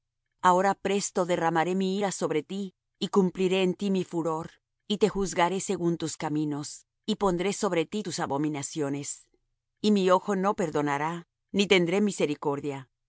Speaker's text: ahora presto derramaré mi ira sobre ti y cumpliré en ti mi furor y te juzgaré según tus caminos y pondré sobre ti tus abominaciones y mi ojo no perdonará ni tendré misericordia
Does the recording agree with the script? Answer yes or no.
yes